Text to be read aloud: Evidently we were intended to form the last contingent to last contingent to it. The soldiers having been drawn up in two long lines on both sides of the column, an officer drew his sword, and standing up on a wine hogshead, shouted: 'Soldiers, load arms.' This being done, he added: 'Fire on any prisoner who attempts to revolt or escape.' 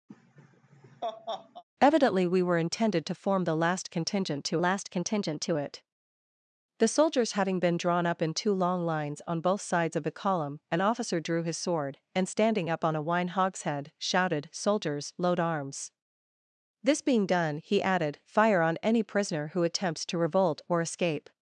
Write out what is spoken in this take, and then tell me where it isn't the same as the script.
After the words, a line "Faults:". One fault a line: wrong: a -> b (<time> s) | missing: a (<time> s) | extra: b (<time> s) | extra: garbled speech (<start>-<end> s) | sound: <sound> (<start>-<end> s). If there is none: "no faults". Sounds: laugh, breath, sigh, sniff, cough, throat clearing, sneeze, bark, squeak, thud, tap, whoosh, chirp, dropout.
Evidently we were intended to form the last contingent to last contingent to it. The soldiers having been drawn up in two long lines on both sides of the column, an officer drew his sword, and standing up on a wine hogshead, shouted: 'Soldiers, load arms.' This being done, he added: 'Fire on any prisoner who attempts to revolt or escape.'
Faults:
sound: laugh (0.1-1.6 s)